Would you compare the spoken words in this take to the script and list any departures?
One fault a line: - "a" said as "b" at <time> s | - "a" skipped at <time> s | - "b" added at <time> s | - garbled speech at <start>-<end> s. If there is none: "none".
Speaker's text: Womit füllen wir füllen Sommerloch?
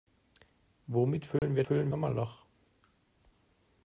none